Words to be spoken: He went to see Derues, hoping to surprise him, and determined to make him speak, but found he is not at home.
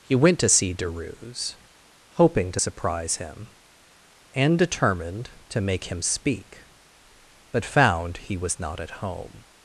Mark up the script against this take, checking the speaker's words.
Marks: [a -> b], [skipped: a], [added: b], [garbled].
He went to see Derues, hoping to surprise him, and determined to make him speak, but found he [is -> was] not at home.